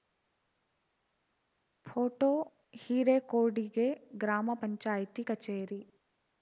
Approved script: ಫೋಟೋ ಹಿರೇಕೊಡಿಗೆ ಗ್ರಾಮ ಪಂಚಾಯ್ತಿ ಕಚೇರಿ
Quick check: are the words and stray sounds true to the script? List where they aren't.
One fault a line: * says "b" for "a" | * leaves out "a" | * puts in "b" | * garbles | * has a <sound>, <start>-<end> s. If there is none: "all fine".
all fine